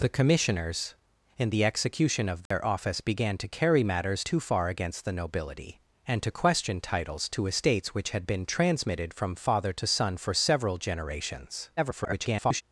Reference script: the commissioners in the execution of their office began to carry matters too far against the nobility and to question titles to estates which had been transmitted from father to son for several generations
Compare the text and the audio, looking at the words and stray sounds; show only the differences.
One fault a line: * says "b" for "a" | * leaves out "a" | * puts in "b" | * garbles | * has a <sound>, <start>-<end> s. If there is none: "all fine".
* has a dropout, 2.5-2.5 s
* garbles